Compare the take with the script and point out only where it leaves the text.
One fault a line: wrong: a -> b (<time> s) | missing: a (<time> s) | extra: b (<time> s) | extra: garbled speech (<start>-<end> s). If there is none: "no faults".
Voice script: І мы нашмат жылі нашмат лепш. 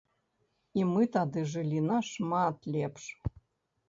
wrong: нашмат -> тады (1.1 s)